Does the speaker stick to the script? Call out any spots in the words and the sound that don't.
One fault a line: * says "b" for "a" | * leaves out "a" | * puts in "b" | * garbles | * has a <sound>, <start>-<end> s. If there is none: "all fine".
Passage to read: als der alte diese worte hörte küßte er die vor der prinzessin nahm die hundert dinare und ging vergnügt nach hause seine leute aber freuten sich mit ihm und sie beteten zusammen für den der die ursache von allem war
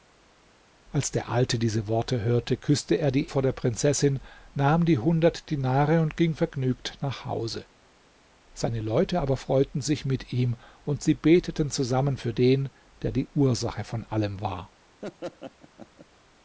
* has a laugh, 15.0-16.1 s